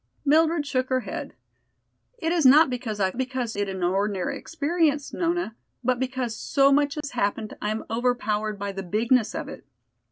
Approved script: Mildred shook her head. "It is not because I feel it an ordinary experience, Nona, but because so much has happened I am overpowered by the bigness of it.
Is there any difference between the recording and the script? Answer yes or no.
yes